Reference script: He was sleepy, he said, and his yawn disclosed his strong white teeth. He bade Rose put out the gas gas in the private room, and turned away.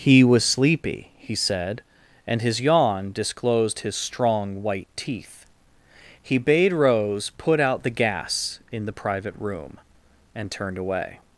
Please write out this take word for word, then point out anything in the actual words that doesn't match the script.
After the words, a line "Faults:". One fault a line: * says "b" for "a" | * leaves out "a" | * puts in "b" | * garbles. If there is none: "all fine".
He was sleepy, he said, and his yawn disclosed his strong white teeth. He bade Rose put out the gas in the private room, and turned away.
Faults:
* leaves out "gas"